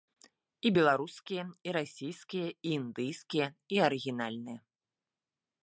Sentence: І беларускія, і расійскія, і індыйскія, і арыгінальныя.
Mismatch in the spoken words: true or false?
false